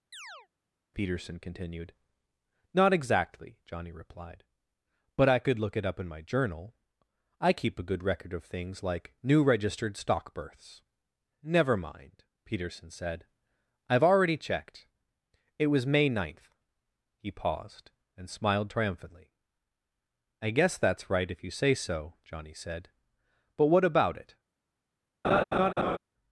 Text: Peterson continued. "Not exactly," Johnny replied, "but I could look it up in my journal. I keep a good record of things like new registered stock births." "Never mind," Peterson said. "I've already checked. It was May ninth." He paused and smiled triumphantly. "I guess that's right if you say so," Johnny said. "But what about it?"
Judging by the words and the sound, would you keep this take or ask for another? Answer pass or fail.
fail